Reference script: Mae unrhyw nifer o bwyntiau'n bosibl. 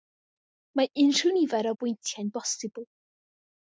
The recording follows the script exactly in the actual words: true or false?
true